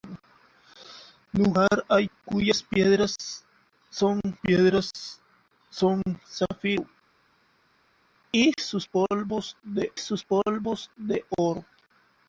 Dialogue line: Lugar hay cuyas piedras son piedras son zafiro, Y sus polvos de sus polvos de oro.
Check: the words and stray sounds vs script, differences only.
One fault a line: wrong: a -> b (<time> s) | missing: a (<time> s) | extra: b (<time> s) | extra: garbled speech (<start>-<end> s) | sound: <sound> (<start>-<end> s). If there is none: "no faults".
no faults